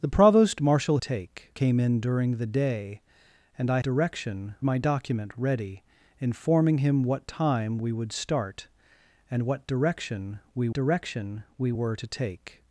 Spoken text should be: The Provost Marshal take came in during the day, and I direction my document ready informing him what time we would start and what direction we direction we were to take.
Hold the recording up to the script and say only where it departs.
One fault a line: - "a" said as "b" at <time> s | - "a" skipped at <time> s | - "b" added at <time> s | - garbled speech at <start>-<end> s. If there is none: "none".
none